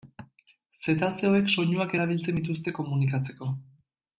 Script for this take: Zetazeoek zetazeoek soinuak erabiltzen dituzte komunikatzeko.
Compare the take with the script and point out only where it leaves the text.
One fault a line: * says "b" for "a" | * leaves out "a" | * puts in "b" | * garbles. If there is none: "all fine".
* leaves out "zetazeoek"